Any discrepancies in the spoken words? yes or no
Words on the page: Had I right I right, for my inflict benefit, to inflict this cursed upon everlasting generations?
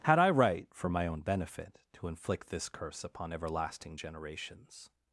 yes